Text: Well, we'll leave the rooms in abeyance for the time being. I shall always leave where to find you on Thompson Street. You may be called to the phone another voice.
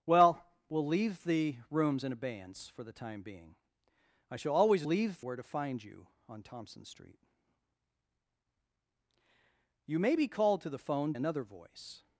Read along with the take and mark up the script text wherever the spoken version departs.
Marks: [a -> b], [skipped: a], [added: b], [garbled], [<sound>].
Well, we'll leave the rooms in abeyance for the time being. I shall always leave where to find you on Thompson Street. You may be called to the phone another voice.